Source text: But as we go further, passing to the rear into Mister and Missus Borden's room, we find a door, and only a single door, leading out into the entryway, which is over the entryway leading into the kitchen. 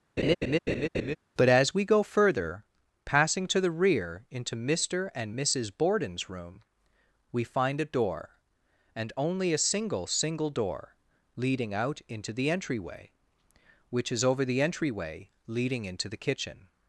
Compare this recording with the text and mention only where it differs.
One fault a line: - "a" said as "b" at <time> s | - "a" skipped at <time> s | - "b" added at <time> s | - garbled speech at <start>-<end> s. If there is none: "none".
- "single" added at 10.1 s